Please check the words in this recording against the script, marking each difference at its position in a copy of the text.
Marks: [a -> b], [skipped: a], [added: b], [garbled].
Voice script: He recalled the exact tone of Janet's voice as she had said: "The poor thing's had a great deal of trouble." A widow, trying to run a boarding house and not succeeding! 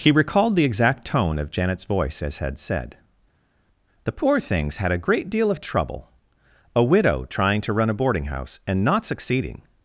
He recalled the exact tone of Janet's voice as [skipped: she] had said: "The poor thing's had a great deal of trouble." A widow, trying to run a boarding house and not succeeding!